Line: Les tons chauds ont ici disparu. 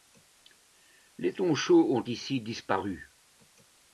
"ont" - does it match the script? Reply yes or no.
yes